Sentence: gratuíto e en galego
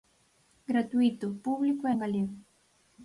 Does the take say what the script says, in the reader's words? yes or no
no